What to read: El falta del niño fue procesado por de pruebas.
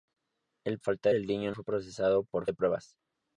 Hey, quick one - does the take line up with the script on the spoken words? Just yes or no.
yes